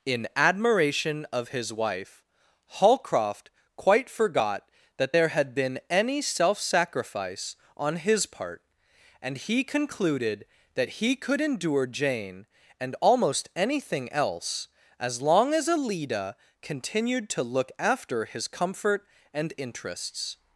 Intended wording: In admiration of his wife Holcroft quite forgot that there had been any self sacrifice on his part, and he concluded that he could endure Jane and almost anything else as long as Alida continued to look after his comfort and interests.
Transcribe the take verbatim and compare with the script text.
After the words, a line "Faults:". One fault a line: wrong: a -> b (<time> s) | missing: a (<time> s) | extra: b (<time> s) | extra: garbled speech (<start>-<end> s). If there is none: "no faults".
In admiration of his wife Holcroft quite forgot that there had been any self sacrifice on his part, and he concluded that he could endure Jane and almost anything else as long as Alida continued to look after his comfort and interests.
Faults:
no faults